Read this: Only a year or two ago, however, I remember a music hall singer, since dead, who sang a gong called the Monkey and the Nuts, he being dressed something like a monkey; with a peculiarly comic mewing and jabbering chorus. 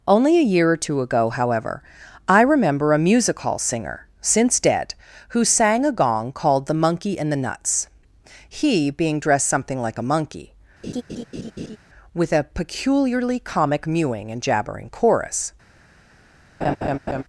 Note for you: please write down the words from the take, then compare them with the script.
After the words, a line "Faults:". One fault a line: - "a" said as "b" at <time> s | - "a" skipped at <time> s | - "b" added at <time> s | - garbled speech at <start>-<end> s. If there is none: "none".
Only a year or two ago, however, I remember a music hall singer, since dead, who sang a gong called the Monkey and the Nuts, he being dressed something like a monkey; with a peculiarly comic mewing and jabbering chorus.
Faults:
none